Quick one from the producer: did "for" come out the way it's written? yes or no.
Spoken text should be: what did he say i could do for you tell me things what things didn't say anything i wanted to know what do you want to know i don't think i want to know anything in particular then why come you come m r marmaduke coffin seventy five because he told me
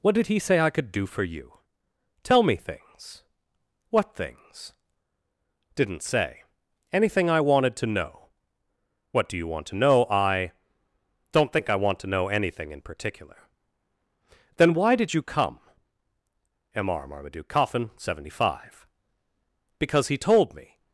yes